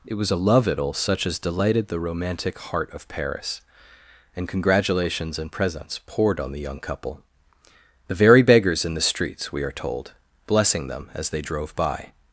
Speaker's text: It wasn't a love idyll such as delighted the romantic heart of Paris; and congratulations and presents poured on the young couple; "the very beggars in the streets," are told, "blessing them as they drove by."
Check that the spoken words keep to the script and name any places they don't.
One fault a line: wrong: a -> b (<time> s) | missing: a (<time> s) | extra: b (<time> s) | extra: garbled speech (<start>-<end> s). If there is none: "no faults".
wrong: wasn't -> was (0.1 s)
extra: we (9.5 s)